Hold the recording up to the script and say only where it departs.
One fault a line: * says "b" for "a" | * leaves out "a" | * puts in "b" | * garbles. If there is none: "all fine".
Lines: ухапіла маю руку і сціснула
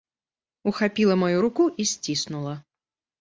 all fine